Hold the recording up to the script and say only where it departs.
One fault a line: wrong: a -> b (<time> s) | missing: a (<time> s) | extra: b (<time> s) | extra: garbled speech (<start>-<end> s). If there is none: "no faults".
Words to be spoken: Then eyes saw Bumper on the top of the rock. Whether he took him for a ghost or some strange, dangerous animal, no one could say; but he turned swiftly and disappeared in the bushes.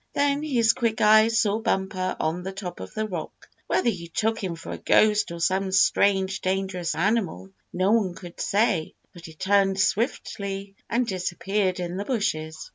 extra: his quick (0.4 s)